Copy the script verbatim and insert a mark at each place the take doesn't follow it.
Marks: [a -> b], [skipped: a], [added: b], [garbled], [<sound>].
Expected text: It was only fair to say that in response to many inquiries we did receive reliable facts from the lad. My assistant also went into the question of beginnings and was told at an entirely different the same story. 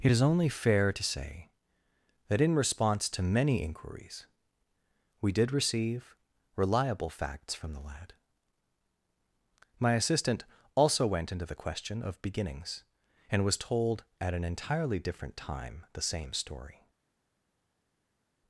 It [was -> is] only fair to say that in response to many inquiries we did receive reliable facts from the lad. My assistant also went into the question of beginnings and was told at an entirely different [added: time] the same story.